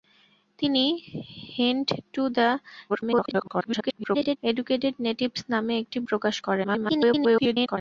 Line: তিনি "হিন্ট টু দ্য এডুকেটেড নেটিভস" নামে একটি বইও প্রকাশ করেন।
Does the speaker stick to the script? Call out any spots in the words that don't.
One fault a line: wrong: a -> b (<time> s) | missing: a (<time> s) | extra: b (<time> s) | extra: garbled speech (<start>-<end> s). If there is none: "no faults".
extra: garbled speech (2.9-4.4 s)
missing: বইও (6.0 s)
extra: garbled speech (6.6-7.8 s)